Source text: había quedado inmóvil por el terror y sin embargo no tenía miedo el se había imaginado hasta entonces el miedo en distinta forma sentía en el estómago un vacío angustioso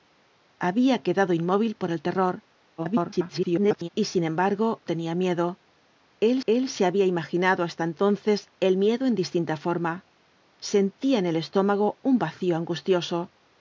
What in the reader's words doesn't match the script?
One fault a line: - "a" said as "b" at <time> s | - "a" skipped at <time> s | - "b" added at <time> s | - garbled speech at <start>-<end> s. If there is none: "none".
- garbled speech at 2.8-3.9 s
- "no" skipped at 4.8 s
- "el" added at 6.5 s